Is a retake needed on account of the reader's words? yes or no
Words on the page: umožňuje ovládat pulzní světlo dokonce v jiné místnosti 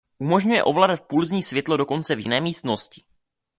no